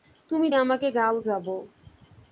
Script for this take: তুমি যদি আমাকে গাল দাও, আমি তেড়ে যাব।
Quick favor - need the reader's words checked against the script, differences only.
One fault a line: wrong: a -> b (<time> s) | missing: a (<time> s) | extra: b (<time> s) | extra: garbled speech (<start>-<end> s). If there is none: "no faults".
missing: যদি (0.5 s)
missing: দাও আমি তেড়ে (1.2 s)